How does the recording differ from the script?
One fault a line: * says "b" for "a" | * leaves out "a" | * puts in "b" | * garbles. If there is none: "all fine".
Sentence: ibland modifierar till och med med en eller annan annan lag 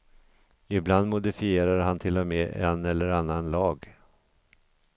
* puts in "han"
* leaves out "med"
* leaves out "annan"